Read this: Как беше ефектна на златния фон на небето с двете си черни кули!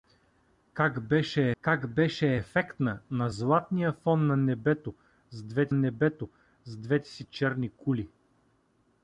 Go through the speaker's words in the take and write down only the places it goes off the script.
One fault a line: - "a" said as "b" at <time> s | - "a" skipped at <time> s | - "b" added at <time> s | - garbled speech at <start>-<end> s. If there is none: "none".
- "как беше" added at 1.6 s
- "небето с двете" added at 5.7 s